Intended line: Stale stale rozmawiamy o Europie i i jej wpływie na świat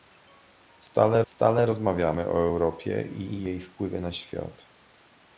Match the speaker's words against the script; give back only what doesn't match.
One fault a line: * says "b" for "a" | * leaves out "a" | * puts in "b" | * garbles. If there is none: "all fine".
all fine